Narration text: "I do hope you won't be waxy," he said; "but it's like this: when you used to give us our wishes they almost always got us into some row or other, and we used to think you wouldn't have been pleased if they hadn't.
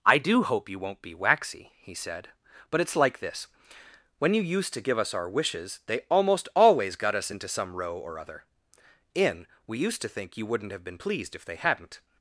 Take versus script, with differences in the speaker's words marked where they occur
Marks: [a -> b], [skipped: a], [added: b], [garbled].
"I do hope you won't be waxy," he said; "but it's like this: when you used to give us our wishes they almost always got us into some row or other, [and -> in] we used to think you wouldn't have been pleased if they hadn't.